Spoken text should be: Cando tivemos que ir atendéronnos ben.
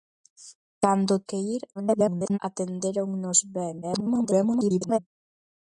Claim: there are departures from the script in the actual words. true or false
true